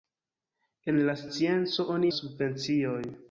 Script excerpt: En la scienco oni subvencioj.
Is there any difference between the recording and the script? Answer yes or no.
no